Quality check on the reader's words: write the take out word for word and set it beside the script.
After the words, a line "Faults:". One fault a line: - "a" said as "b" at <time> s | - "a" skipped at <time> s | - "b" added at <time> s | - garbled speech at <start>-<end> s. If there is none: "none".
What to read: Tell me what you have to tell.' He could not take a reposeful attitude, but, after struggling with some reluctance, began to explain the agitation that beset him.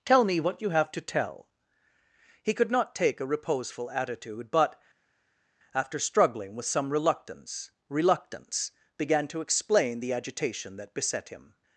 Tell me what you have to tell.' He could not take a reposeful attitude, but, after struggling with some reluctance reluctance, began to explain the agitation that beset him.
Faults:
- "reluctance" added at 7.9 s